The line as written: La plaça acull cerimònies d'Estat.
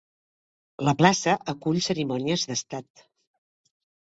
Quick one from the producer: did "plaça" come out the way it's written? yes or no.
yes